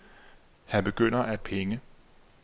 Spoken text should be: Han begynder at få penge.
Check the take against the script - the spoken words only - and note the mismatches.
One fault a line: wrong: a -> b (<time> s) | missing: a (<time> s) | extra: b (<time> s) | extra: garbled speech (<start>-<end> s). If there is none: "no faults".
missing: få (1.4 s)